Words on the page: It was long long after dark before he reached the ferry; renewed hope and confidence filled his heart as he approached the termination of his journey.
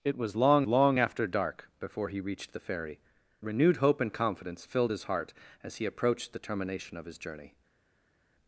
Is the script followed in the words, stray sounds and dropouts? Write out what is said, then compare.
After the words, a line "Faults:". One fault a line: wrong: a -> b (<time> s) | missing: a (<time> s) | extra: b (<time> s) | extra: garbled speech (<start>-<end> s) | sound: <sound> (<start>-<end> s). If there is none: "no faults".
It was long long after dark before he reached the ferry; renewed hope and confidence filled his heart as he approached the termination of his journey.
Faults:
no faults